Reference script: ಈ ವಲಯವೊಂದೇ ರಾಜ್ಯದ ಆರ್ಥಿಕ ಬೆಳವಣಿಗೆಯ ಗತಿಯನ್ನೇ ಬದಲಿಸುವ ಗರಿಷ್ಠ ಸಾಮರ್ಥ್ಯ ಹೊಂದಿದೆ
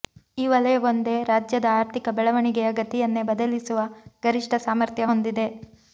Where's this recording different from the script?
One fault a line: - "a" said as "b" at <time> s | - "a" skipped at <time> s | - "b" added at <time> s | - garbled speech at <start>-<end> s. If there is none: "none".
none